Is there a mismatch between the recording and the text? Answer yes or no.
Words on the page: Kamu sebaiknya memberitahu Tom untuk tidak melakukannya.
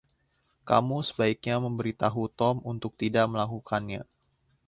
no